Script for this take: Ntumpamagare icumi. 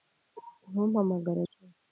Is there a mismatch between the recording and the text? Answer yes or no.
no